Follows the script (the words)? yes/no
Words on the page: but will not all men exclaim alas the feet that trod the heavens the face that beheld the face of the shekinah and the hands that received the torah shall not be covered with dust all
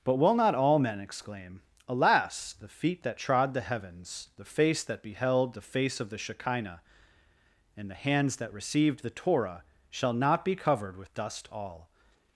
yes